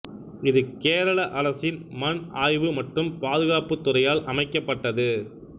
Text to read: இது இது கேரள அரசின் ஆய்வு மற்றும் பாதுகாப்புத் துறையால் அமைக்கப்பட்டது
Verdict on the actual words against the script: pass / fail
fail